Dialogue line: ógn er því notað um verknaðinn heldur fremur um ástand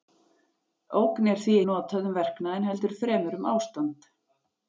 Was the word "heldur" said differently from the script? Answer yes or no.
no